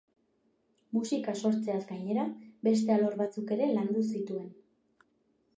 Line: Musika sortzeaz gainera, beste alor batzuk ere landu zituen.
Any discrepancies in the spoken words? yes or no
no